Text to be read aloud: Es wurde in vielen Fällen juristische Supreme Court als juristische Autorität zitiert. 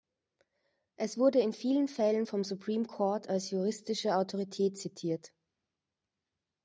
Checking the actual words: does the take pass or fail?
fail